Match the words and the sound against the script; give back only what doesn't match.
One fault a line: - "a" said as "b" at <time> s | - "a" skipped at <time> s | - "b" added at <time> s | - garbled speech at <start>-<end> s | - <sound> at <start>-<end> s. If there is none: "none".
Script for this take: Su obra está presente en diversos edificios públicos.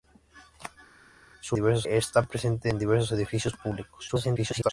- "obra" said as "diversos" at 1.5 s
- garbled speech at 4.1-4.7 s